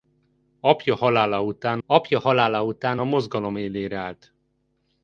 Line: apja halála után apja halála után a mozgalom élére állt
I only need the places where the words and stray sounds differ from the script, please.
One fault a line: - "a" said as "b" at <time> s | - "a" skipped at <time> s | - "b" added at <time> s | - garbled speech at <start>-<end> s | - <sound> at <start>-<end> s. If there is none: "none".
none